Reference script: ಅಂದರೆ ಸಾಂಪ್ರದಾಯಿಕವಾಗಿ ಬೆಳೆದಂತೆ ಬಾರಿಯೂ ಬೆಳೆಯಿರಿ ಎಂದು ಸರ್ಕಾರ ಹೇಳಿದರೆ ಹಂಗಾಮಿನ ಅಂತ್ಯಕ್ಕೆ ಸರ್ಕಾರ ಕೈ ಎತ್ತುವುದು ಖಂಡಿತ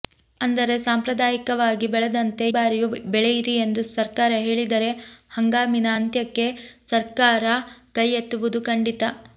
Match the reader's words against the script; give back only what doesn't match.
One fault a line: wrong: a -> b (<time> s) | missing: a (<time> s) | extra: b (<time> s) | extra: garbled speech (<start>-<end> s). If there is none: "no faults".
no faults